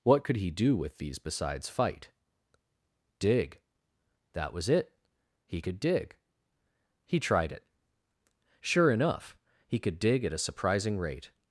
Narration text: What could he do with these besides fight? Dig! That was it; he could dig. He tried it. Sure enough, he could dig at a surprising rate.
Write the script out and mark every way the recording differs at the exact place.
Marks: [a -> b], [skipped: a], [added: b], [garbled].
What could he do with these besides fight? Dig! That was it; he could dig. He tried it. Sure enough, he could dig at a surprising rate.